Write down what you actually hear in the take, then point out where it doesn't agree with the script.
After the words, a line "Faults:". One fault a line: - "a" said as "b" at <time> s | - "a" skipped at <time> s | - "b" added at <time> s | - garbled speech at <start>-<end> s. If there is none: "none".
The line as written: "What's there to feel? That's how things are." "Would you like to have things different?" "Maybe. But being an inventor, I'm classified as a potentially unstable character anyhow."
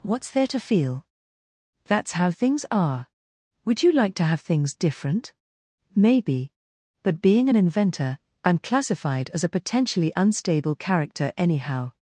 "What's there to feel? That's how things are." "Would you like to have things different?" "Maybe. But being an inventor, I'm classified as a potentially unstable character anyhow."
Faults:
none